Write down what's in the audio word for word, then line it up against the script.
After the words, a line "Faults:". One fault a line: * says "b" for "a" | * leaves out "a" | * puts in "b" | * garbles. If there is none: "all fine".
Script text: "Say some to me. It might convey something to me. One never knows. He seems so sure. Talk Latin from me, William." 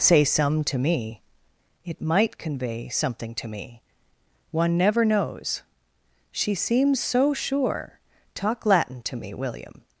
"Say some to me. It might convey something to me. One never knows. She seems so sure. Talk Latin to me, William."
Faults:
* says "She" for "He"
* says "to" for "from"